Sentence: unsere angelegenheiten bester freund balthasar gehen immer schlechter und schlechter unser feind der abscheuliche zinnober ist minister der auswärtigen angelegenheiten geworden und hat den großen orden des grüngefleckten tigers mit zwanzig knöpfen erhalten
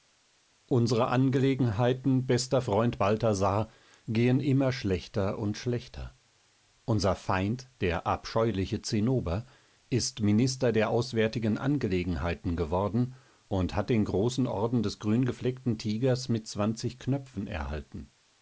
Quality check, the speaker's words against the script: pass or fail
pass